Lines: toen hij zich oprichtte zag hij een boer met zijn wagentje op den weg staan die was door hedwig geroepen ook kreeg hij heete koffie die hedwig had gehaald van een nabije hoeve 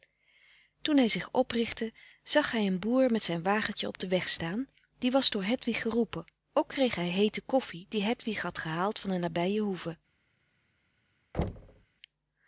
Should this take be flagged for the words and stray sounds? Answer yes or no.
yes